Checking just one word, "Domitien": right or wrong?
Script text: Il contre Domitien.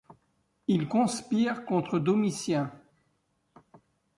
right